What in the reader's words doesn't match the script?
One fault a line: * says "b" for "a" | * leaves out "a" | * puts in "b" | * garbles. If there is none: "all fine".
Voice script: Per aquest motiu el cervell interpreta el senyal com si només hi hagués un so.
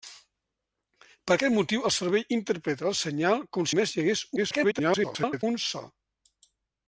* leaves out "si"
* garbles